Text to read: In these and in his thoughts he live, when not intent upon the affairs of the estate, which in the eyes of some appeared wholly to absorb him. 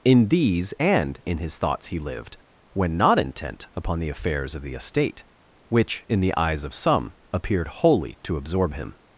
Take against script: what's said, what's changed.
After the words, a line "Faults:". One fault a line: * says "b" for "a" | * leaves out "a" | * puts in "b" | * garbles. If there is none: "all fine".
In these and in his thoughts he lived, when not intent upon the affairs of the estate, which in the eyes of some appeared wholly to absorb him.
Faults:
* says "lived" for "live"